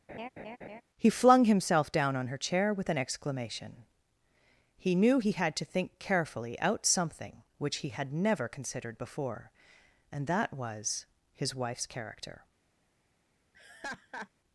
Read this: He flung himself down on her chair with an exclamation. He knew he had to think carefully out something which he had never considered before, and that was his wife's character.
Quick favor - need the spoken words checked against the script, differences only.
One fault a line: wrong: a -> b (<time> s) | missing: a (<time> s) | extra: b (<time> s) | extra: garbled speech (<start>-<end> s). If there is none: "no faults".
no faults